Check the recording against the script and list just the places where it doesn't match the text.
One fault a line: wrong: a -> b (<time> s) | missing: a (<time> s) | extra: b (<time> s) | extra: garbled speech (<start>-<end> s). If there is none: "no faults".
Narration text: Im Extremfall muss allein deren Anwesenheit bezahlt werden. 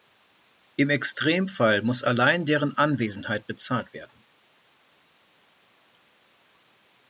no faults